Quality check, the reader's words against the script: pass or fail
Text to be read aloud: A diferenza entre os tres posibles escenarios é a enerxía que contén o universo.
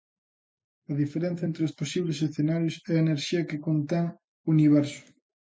fail